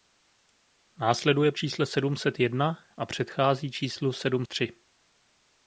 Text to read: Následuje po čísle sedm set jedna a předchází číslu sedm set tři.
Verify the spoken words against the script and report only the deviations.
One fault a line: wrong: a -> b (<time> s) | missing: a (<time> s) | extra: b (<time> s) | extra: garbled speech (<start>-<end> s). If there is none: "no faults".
missing: po (1.5 s)
missing: set (4.5 s)